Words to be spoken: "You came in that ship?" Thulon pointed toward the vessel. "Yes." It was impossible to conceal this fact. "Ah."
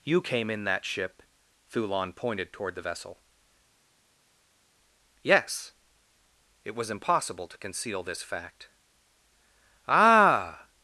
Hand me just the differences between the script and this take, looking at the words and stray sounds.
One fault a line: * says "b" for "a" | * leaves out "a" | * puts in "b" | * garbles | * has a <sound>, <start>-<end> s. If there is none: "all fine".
all fine